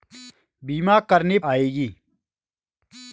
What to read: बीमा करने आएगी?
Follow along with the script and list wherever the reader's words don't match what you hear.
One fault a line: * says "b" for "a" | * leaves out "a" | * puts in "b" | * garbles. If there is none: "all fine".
all fine